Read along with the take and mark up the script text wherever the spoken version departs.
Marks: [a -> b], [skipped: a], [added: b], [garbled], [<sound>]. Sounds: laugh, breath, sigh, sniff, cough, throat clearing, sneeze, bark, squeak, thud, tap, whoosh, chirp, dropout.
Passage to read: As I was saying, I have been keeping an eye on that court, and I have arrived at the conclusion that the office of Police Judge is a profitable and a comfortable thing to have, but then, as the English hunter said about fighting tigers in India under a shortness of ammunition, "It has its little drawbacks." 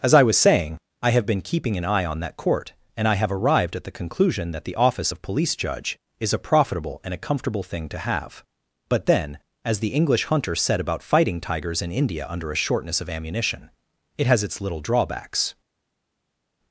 As I was saying, I have been keeping an eye on that court, and I have arrived at the conclusion that the office of Police Judge is a profitable and a comfortable thing to have, but then, as the English hunter said about fighting tigers in India under a shortness of ammunition, "It has its little drawbacks."